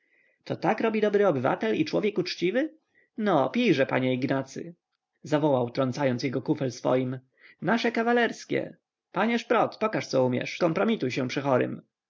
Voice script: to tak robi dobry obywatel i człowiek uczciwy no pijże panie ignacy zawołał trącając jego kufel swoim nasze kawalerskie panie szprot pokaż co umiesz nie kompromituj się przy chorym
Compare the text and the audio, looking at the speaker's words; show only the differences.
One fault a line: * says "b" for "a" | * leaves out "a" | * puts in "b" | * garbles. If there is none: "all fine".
* leaves out "nie"